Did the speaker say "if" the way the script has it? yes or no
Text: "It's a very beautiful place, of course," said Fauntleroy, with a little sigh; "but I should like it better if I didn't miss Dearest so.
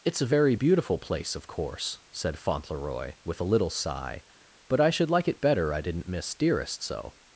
no